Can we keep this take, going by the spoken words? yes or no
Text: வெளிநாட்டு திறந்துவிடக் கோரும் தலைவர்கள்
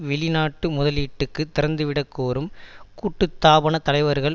no